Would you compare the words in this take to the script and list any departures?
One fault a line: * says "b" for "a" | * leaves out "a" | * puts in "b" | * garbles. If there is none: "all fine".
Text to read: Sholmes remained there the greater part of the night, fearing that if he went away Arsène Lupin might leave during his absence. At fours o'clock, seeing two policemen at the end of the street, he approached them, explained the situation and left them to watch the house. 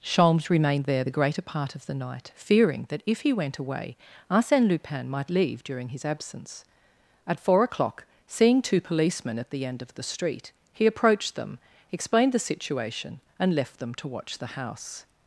* says "four" for "fours"